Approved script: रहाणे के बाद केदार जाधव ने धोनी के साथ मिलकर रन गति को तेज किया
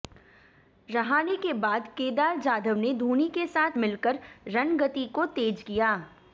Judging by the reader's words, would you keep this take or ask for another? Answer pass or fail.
pass